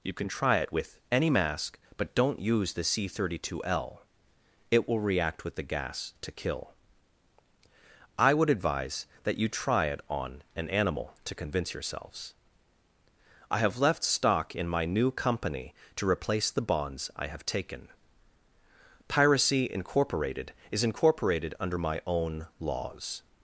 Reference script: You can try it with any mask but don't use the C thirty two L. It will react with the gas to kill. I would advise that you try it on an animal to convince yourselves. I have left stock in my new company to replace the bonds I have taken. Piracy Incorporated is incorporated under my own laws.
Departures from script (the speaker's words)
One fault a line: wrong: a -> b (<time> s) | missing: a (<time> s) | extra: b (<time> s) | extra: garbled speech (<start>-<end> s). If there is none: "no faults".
no faults